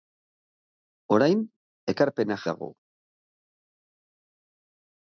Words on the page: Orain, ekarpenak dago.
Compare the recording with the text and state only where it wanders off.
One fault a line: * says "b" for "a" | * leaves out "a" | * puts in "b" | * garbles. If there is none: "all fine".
all fine